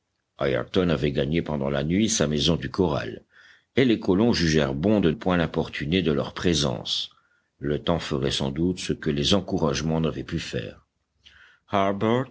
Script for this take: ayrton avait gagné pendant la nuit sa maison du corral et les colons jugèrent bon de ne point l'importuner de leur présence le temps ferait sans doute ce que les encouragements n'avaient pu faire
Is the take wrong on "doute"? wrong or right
right